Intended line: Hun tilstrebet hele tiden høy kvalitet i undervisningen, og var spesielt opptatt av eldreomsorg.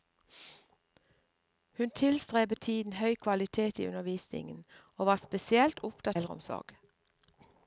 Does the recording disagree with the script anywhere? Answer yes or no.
yes